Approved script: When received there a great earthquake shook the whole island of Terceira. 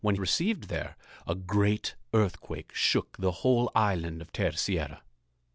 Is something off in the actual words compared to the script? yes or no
no